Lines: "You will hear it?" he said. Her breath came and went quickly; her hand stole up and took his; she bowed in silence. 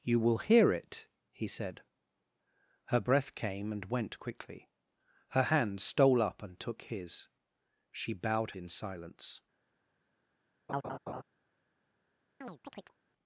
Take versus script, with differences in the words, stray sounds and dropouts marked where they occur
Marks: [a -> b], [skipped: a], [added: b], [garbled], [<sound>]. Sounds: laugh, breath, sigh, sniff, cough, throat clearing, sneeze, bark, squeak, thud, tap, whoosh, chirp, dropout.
"You will hear it?" he said. Her breath came and went quickly; her hand stole up and took his; she bowed in silence. [laugh] [chirp]